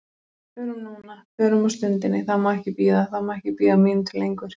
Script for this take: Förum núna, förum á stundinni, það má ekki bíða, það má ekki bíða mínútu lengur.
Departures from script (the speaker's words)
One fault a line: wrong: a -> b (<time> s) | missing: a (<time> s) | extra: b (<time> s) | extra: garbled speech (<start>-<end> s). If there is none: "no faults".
no faults